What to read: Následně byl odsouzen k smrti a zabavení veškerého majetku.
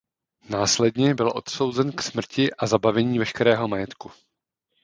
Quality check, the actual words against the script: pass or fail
pass